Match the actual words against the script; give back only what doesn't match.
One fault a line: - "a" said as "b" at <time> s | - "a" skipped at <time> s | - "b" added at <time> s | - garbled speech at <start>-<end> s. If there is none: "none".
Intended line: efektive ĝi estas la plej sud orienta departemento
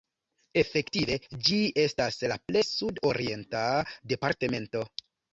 none